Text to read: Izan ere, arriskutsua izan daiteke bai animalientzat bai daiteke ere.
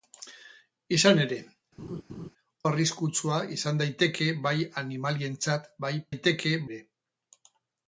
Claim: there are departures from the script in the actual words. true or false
false